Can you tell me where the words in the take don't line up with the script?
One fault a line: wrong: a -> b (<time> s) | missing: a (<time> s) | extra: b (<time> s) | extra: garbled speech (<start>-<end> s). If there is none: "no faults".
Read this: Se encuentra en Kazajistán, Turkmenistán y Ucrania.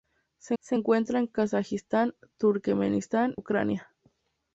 extra: se (0.6 s)
missing: y (3.3 s)